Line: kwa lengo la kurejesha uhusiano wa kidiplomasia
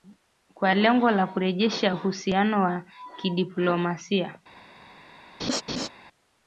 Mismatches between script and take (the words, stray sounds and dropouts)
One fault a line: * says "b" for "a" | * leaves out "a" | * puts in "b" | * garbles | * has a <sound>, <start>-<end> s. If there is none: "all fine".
* has a laugh, 5.4-5.9 s